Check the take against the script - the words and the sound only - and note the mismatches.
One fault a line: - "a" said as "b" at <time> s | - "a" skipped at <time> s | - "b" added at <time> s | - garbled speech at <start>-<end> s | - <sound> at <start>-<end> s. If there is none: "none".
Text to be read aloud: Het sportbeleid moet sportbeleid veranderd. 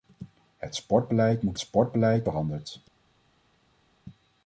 none